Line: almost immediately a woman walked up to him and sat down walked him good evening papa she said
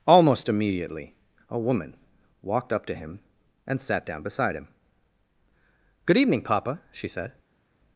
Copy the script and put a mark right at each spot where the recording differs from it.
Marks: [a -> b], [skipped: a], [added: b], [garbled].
almost immediately a woman walked up to him and sat down [walked -> beside] him good evening papa she said